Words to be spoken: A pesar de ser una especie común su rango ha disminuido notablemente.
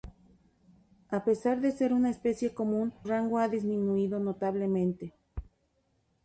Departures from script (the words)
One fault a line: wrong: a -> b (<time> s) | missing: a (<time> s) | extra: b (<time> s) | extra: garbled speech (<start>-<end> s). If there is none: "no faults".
missing: su (2.9 s)